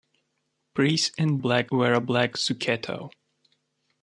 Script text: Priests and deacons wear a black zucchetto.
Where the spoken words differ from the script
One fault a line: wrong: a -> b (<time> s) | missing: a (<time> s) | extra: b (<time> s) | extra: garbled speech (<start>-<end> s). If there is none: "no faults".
wrong: deacons -> black (1.3 s)